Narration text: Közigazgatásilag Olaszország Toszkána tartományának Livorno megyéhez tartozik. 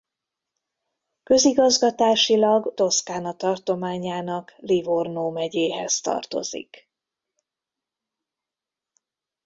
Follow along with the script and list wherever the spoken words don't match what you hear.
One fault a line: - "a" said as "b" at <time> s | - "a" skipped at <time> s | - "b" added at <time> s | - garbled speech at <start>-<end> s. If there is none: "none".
- "Olaszország" skipped at 2.7 s